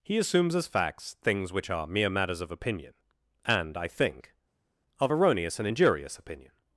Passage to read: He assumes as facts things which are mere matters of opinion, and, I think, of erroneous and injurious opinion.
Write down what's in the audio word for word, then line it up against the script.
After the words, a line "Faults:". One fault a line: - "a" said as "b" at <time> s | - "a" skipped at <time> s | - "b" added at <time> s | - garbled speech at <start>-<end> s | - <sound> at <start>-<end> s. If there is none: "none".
He assumes as facts things which are mere matters of opinion, and, I think, of erroneous and injurious opinion.
Faults:
none